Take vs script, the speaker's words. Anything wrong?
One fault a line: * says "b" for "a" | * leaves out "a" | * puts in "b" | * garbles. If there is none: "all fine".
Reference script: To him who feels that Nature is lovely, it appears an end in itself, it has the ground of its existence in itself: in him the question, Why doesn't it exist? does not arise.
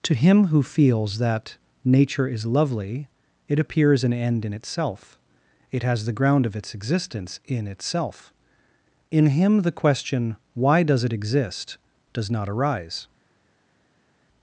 * says "does" for "doesn't"